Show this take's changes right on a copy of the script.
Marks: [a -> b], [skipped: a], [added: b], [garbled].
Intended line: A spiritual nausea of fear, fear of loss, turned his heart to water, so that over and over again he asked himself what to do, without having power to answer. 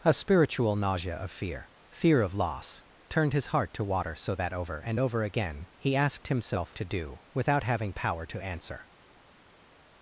A spiritual nausea of fear, fear of loss, turned his heart to water, so that over and over again he asked himself [skipped: what] to do, without having power to answer.